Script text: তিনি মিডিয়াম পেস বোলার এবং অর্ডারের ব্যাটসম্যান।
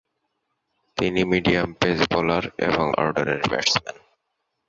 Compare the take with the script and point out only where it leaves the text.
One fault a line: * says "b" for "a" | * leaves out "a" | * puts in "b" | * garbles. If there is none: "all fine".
all fine